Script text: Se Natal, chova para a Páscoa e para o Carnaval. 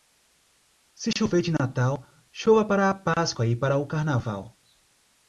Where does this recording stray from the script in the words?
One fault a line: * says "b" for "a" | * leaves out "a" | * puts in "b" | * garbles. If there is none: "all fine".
* puts in "chover de"